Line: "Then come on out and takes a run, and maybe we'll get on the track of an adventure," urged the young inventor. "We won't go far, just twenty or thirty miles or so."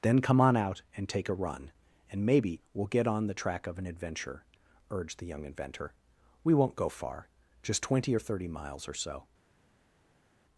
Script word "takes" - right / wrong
wrong